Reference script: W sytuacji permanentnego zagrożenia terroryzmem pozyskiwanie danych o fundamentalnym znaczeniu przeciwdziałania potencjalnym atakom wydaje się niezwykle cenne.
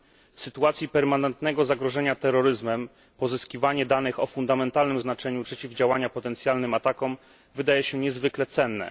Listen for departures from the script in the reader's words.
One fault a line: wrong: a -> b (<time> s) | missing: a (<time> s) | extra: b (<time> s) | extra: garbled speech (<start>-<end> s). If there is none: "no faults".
no faults